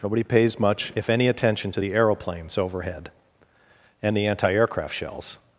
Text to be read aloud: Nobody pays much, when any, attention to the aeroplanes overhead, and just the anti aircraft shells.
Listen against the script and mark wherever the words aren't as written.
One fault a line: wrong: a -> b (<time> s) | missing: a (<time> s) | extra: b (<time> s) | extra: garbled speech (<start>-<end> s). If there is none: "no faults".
wrong: when -> if (0.9 s)
missing: just (4.2 s)